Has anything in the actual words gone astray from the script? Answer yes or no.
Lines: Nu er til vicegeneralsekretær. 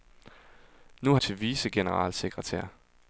no